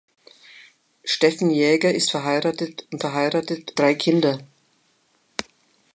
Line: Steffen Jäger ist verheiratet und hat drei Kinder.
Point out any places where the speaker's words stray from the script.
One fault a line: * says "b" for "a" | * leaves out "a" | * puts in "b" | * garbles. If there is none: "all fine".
* says "verheiratet" for "hat"